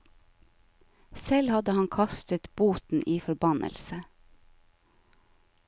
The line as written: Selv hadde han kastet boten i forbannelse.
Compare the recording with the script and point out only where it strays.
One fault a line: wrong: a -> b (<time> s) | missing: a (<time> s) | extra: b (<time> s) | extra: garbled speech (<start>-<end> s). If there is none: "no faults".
no faults